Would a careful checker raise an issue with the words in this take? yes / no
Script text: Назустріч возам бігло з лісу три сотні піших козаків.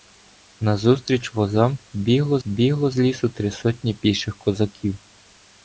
yes